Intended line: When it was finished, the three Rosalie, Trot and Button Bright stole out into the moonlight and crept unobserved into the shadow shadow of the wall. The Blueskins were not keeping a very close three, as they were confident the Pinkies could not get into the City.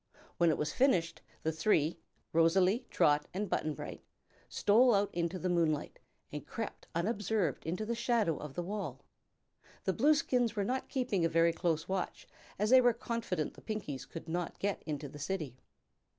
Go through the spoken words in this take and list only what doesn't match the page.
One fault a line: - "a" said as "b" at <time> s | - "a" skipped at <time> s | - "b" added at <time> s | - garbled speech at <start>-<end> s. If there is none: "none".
- "shadow" skipped at 8.3 s
- "three" said as "watch" at 11.9 s